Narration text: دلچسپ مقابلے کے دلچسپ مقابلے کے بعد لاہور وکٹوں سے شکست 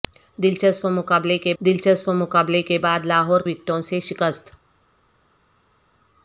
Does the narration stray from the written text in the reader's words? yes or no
no